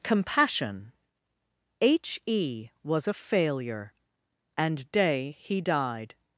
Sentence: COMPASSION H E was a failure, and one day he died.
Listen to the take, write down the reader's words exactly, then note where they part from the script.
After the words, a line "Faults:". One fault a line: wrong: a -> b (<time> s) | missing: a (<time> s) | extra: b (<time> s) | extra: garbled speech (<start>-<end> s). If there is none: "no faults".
COMPASSION H E was a failure, and day he died.
Faults:
missing: one (4.9 s)